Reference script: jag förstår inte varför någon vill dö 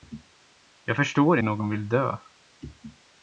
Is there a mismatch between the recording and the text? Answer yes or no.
yes